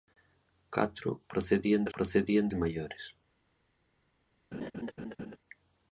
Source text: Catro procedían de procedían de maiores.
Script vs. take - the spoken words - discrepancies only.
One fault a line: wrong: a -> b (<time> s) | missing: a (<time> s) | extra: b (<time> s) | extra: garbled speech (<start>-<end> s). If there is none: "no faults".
no faults